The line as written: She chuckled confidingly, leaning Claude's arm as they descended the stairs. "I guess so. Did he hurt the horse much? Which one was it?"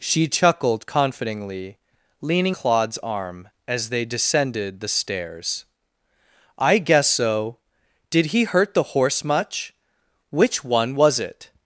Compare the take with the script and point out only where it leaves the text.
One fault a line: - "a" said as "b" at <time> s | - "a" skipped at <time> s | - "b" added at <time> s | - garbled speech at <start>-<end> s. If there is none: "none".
none